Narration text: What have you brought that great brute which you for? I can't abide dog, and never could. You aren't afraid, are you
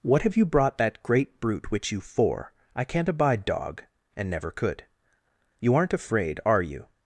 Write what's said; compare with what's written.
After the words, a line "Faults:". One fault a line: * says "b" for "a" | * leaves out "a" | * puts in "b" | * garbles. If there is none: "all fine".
What have you brought that great brute which you for? I can't abide dog, and never could. You aren't afraid, are you
Faults:
all fine